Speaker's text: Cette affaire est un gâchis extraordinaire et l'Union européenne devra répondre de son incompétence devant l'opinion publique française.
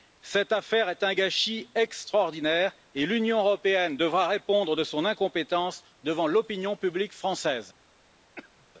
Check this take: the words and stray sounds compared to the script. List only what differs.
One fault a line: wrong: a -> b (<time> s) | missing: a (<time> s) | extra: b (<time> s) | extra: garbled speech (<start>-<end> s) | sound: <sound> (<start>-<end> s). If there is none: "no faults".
sound: cough (8.4-8.7 s)